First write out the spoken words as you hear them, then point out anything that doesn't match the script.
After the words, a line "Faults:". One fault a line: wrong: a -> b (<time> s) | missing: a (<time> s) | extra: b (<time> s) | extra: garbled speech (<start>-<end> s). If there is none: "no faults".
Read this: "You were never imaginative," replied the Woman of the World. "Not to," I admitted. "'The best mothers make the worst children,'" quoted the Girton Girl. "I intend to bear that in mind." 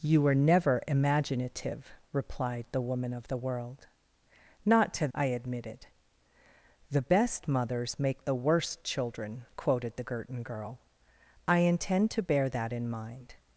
"You were never imaginative," replied the Woman of the World. "Not to," I admitted. "'The best mothers make the worst children,'" quoted the Girton Girl. "I intend to bear that in mind."
Faults:
no faults